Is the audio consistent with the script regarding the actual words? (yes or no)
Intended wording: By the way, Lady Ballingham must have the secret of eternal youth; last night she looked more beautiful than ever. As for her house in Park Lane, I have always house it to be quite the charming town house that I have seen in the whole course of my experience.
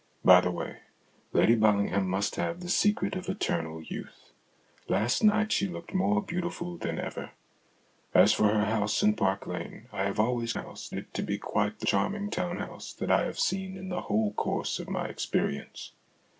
yes